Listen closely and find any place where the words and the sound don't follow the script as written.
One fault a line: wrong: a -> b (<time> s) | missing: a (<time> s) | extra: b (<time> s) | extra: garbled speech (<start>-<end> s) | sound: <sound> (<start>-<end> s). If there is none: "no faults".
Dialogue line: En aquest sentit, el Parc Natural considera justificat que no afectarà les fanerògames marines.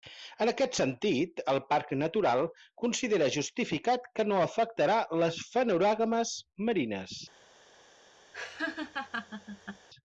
sound: laugh (8.3-9.9 s)